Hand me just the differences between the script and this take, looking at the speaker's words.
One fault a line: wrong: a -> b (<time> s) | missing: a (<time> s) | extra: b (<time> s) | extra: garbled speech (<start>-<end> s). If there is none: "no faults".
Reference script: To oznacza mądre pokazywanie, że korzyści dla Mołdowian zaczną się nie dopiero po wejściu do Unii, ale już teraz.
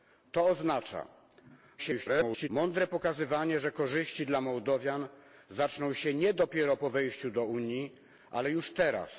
extra: garbled speech (1.8-2.5 s)